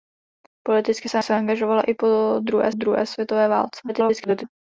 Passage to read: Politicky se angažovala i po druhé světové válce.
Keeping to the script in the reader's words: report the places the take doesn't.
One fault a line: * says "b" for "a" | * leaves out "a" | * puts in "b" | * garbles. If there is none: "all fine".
* puts in "se"
* puts in "druhé"
* garbles